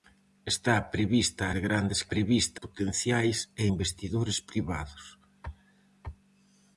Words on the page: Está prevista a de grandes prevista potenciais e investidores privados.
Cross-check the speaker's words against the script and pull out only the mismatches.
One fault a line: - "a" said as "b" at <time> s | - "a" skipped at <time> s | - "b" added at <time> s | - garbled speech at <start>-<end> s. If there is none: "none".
none